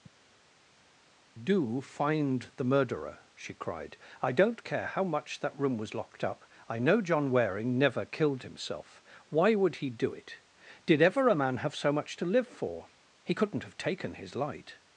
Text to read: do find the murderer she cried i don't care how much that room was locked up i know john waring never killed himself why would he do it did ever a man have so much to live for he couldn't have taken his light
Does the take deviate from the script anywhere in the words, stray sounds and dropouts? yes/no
no